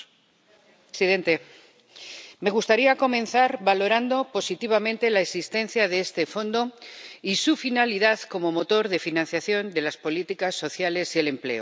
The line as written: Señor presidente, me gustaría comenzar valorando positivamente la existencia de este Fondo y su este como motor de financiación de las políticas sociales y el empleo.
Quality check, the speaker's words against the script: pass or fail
fail